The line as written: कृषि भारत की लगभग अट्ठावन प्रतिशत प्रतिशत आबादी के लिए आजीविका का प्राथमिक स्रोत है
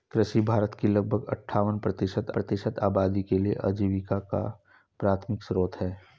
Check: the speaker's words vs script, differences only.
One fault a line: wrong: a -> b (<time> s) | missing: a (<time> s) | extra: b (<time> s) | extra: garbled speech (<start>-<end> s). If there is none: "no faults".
no faults